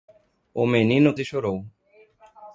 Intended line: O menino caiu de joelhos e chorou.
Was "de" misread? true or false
true